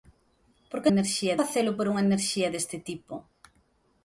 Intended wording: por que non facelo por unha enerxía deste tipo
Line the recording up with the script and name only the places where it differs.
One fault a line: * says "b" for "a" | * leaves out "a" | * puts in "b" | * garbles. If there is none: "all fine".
* says "enerxía" for "non"